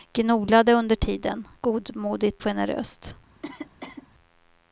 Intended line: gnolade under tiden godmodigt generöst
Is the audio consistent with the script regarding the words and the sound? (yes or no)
no